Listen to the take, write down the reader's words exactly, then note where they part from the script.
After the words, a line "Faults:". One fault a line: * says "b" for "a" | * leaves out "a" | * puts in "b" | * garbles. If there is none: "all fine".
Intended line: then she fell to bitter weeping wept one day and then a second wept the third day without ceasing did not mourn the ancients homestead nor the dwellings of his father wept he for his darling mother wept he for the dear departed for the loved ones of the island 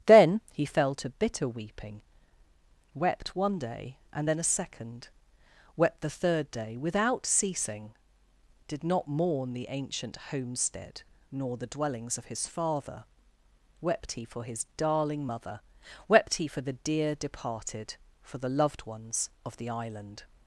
then he fell to bitter weeping wept one day and then a second wept the third day without ceasing did not mourn the ancient homestead nor the dwellings of his father wept he for his darling mother wept he for the dear departed for the loved ones of the island
Faults:
* says "he" for "she"
* says "ancient" for "ancients"